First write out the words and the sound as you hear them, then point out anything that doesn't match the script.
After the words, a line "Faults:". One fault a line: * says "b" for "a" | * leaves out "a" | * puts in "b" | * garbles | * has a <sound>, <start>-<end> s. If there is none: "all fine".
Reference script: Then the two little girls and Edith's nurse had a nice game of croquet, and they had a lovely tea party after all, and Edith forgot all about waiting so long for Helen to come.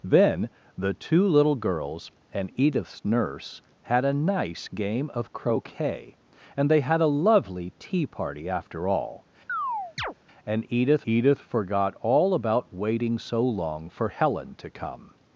Then the two little girls and Edith's nurse had a nice game of croquet, and they had a lovely tea party after all, and Edith Edith forgot all about waiting so long for Helen to come.
Faults:
* has a chirp, 9.5-10.1 s
* puts in "Edith"